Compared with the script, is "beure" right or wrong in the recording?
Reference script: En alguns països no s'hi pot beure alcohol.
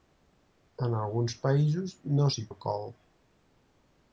wrong